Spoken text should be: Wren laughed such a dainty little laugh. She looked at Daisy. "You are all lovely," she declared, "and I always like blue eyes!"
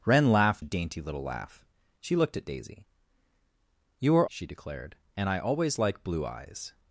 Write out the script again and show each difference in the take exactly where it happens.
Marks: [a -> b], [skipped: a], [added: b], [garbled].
Wren laughed [skipped: such] a dainty little laugh. She looked at Daisy. "You are [skipped: all lovely,"] she declared, "and I always like blue eyes!"